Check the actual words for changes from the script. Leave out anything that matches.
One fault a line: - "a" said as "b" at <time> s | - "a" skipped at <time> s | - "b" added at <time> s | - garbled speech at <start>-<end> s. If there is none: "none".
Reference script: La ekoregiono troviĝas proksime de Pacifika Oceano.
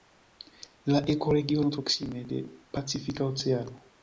- "troviĝas" skipped at 1.8 s